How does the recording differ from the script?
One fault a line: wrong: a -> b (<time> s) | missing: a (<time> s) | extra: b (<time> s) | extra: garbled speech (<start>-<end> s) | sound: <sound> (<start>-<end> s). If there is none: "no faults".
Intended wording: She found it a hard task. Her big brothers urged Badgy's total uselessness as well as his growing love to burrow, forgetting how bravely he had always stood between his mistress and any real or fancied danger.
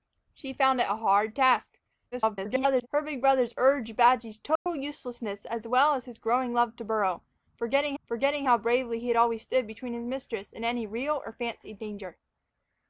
extra: garbled speech (2.1-2.9 s)
sound: dropout (4.6-4.7 s)
extra: forgetting (8.0 s)